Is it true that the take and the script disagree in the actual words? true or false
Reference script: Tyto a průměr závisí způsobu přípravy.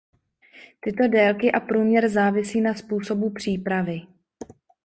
true